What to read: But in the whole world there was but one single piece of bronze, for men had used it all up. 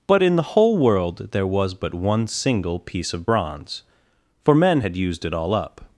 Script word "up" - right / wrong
right